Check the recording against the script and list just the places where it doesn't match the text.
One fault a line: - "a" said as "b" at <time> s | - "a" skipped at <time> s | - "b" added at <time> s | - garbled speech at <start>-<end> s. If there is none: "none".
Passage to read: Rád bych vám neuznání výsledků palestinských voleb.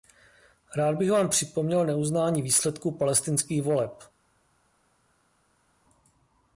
- "připomněl" added at 1.3 s